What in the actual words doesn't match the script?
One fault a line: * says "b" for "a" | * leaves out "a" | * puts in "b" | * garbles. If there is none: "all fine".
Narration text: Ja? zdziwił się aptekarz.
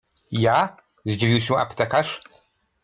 all fine